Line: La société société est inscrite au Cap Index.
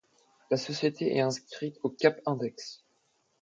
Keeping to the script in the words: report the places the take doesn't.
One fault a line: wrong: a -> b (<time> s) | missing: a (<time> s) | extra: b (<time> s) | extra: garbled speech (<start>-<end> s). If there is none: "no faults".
missing: société (1.1 s)